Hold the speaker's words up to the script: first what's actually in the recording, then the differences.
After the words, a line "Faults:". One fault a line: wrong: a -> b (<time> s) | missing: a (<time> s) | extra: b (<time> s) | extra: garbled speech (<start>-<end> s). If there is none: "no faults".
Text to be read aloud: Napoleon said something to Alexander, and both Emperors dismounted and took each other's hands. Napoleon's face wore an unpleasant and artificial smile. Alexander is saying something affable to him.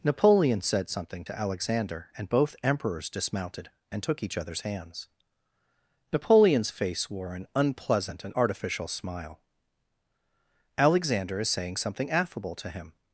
Napoleon said something to Alexander, and both Emperors dismounted and took each other's hands. Napoleon's face wore an unpleasant and artificial smile. Alexander is saying something affable to him.
Faults:
no faults